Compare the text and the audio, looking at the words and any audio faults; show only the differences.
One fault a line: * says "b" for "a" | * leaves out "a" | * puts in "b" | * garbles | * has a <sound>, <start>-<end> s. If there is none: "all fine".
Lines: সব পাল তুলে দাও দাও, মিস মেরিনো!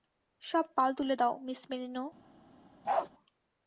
* leaves out "দাও"
* has a bark, 2.8-3.1 s